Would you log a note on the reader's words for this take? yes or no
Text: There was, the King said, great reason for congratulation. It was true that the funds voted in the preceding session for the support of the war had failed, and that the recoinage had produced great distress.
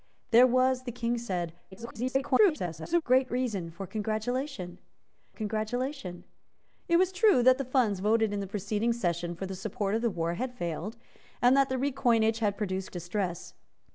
yes